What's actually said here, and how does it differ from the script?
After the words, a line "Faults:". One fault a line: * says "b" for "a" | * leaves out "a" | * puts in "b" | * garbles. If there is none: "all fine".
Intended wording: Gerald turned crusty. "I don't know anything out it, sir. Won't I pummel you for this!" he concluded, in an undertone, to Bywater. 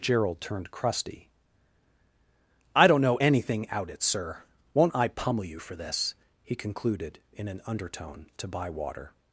Gerald turned crusty. "I don't know anything out it, sir. Won't I pummel you for this!" he concluded, in an undertone, to Bywater.
Faults:
all fine